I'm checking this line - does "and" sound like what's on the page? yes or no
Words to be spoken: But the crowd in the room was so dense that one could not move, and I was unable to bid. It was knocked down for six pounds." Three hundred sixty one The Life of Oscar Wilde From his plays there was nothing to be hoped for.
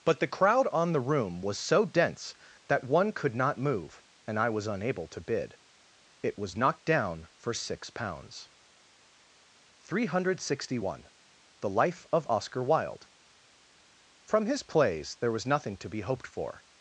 yes